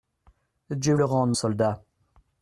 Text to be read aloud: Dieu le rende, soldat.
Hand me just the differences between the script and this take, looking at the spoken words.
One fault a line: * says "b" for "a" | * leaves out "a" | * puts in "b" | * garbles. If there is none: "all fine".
all fine